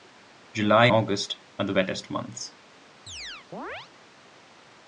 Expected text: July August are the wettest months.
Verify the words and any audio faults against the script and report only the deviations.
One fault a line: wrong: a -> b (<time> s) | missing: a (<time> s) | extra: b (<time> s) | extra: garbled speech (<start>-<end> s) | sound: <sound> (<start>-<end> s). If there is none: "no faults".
sound: chirp (3.1-3.9 s)